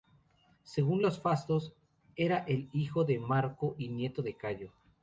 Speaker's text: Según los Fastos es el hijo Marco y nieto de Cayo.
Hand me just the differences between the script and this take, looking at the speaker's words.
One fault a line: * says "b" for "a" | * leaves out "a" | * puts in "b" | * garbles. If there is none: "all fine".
* says "era" for "es"
* puts in "de"